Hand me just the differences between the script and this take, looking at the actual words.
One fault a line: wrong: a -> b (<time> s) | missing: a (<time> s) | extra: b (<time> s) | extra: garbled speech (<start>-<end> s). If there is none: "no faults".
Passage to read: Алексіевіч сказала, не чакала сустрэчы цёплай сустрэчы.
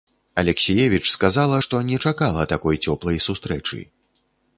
extra: што (1.6 s)
wrong: сустрэчы -> такой (2.5 s)